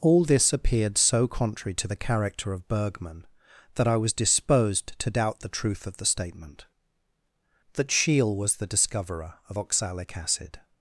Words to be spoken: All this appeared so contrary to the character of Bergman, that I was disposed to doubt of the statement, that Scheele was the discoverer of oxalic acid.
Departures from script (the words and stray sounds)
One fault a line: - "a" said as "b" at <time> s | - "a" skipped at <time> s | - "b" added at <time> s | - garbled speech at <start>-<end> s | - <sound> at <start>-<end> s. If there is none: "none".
- "the truth" added at 5.4 s